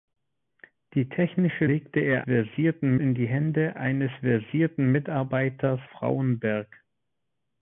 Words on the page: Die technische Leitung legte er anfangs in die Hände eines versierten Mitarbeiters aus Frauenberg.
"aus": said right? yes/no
no